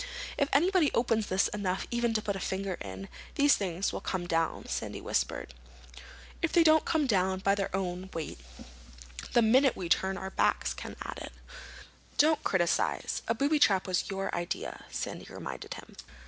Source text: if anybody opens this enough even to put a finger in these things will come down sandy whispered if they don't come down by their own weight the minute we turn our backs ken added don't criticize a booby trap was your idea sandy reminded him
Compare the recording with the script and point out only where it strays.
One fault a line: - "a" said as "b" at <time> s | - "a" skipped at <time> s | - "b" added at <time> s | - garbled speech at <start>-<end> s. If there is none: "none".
none